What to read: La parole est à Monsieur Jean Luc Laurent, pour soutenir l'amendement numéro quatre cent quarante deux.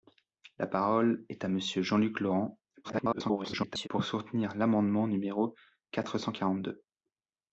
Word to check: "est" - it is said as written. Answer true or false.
true